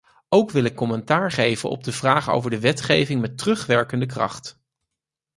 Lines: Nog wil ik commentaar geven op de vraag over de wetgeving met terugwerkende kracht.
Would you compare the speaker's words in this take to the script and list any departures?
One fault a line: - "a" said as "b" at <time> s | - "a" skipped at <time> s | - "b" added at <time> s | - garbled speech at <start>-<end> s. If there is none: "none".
- "Nog" said as "Ook" at 0.3 s